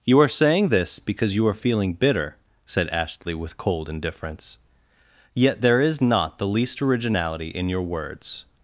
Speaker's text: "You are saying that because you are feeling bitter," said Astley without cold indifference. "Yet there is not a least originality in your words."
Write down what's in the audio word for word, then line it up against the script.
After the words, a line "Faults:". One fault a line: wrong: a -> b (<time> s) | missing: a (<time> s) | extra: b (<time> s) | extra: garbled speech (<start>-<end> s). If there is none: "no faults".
"You are saying this because you are feeling bitter," said Astley with cold indifference. "Yet there is not the least originality in your words."
Faults:
wrong: that -> this (0.7 s)
wrong: without -> with (3.3 s)
wrong: a -> the (6.4 s)